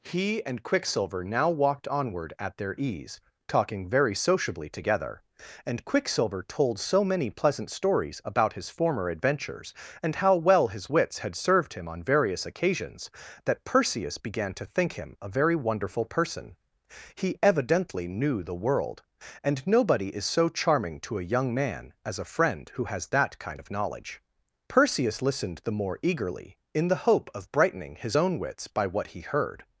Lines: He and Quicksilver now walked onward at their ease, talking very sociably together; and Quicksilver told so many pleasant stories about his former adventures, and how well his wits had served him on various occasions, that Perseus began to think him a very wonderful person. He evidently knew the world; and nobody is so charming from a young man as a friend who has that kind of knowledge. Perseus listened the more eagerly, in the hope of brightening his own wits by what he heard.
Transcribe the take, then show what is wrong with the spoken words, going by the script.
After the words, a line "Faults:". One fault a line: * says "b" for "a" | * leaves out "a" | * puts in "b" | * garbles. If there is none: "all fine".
He and Quicksilver now walked onward at their ease, talking very sociably together; and Quicksilver told so many pleasant stories about his former adventures, and how well his wits had served him on various occasions, that Perseus began to think him a very wonderful person. He evidently knew the world; and nobody is so charming to a young man as a friend who has that kind of knowledge. Perseus listened the more eagerly, in the hope of brightening his own wits by what he heard.
Faults:
* says "to" for "from"